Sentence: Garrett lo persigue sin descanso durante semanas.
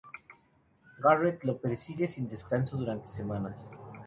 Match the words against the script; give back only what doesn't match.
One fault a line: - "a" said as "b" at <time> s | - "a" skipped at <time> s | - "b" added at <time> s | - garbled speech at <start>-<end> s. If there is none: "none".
none